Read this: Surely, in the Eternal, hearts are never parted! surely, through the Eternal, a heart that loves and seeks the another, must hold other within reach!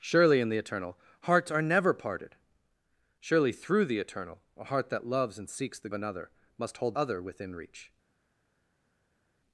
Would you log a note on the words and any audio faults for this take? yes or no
no